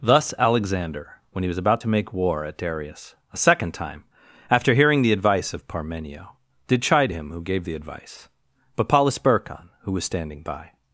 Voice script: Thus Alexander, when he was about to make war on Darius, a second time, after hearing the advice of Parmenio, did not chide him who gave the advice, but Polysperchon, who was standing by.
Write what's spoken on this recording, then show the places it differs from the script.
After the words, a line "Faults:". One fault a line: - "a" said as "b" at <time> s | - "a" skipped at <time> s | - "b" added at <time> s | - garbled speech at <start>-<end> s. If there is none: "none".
Thus Alexander, when he was about to make war at Darius, a second time, after hearing the advice of Parmenio, did chide him who gave the advice, but Polysperchon, who was standing by.
Faults:
- "on" said as "at" at 2.4 s
- "not" skipped at 6.8 s